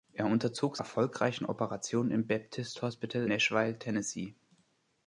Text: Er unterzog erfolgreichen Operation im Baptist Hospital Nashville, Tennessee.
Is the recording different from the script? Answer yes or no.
no